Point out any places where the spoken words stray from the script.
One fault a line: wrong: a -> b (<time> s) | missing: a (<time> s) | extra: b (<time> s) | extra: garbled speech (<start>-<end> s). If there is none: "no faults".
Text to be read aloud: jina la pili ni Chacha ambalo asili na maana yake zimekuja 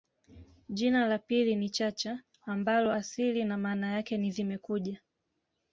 extra: ni (4.2 s)